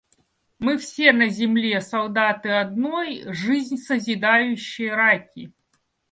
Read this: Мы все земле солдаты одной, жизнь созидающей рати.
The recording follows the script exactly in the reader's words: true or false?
false